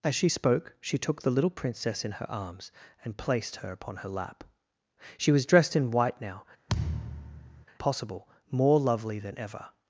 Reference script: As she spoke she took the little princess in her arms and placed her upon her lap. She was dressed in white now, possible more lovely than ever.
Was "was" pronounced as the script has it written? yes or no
yes